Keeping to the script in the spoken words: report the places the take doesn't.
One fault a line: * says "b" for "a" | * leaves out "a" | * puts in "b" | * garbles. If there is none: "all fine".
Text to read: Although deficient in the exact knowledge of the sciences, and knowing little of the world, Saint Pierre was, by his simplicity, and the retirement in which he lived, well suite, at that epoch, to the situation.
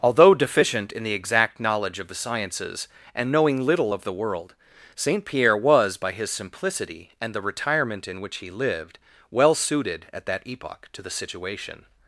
* says "suited" for "suite"